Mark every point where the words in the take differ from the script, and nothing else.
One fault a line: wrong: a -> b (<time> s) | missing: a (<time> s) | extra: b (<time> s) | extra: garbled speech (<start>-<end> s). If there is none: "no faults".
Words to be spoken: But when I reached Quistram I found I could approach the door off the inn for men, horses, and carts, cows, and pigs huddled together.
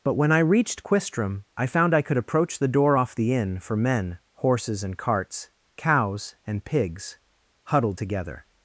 no faults